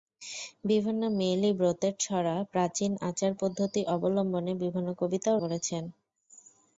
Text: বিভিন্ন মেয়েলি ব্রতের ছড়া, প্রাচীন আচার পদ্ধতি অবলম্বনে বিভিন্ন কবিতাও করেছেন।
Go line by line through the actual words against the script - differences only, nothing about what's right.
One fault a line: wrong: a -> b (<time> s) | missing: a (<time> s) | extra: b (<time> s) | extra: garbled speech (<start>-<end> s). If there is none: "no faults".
no faults